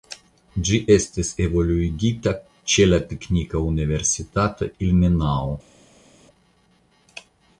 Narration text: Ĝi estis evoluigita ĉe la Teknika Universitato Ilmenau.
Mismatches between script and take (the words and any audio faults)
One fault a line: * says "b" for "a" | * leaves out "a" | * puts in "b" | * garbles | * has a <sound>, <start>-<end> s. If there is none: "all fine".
all fine